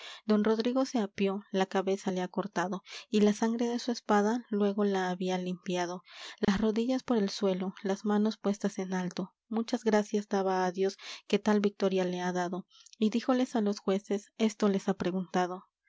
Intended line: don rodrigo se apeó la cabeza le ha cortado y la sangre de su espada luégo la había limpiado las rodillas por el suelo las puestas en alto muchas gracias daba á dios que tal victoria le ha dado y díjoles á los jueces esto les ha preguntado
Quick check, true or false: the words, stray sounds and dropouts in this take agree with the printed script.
false